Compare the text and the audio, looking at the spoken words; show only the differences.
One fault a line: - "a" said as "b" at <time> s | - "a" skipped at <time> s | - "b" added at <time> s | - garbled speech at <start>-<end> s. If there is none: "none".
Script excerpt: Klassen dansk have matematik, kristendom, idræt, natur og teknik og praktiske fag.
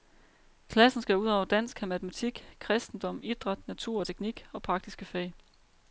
- "skal udover" added at 1.0 s